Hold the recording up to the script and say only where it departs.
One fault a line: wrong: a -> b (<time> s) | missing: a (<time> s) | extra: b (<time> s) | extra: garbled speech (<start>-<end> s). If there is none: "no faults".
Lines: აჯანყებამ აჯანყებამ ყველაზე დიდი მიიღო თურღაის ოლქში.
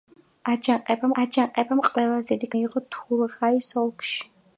no faults